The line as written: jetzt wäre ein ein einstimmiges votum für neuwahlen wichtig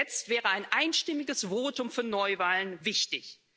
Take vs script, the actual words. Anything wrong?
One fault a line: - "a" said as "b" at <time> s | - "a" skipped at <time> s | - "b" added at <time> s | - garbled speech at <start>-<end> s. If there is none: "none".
- "ein" skipped at 0.7 s